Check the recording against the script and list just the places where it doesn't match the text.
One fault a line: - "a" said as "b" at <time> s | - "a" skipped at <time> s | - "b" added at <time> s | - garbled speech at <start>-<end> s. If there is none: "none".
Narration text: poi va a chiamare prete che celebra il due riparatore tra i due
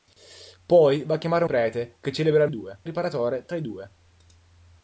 none